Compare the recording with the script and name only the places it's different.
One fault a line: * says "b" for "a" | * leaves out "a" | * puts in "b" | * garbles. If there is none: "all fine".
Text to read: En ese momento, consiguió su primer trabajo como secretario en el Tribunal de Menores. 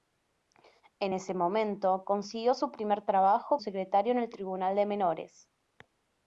* leaves out "como"